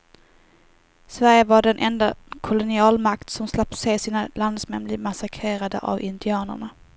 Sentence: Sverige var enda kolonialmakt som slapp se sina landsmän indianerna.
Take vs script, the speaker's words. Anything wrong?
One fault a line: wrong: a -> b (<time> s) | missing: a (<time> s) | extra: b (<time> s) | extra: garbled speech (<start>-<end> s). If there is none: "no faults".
extra: den (1.6 s)
extra: bli massakrerade av (4.8 s)